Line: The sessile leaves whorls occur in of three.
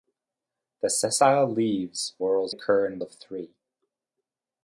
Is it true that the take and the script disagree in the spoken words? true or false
false